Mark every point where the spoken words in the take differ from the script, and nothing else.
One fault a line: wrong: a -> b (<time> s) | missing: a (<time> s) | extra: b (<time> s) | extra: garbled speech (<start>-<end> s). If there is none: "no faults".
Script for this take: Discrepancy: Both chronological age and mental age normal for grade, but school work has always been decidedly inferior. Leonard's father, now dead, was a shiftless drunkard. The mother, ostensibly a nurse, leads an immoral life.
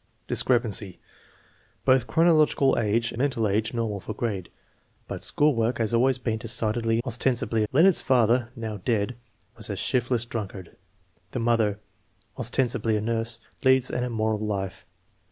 missing: and (3.1 s)
wrong: inferior -> ostensibly (7.1 s)